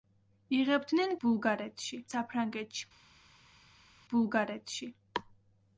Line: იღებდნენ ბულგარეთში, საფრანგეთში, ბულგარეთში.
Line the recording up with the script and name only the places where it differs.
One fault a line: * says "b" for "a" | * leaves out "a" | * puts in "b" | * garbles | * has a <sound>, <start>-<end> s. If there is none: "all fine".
all fine